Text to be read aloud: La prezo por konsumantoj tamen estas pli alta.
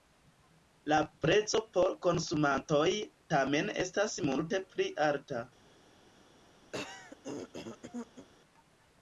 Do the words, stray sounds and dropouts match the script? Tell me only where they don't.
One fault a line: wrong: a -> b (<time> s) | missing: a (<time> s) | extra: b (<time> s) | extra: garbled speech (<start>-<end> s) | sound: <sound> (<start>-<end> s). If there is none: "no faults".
extra: multe (4.3 s)
sound: throat clearing (6.7-8.3 s)